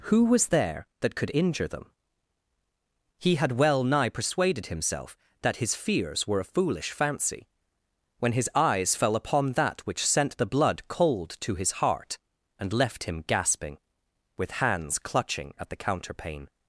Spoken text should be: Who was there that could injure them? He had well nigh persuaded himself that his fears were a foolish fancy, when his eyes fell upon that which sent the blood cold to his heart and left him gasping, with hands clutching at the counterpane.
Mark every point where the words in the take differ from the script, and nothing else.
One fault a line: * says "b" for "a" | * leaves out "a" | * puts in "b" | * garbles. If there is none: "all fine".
all fine